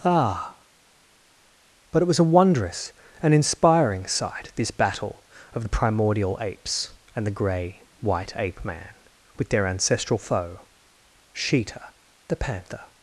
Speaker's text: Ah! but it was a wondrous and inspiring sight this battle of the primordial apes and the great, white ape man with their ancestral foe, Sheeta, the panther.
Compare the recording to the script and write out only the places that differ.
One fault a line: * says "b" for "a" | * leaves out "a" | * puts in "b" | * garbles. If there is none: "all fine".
* says "grey" for "great"